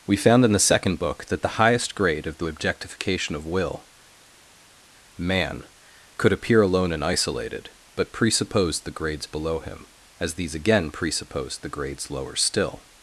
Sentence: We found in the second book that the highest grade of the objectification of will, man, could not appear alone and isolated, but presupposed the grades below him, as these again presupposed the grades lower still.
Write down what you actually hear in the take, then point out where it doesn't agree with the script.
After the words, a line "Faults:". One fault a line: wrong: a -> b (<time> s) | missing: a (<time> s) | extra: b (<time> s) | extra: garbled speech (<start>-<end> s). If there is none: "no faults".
We found in the second book that the highest grade of the objectification of will, man, could appear alone and isolated, but presupposed the grades below him, as these again presupposed the grades lower still.
Faults:
missing: not (6.3 s)